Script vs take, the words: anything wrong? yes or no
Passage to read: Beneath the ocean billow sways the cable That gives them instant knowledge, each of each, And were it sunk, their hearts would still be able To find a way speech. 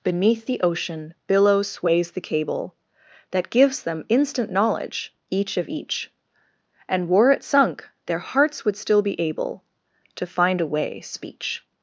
no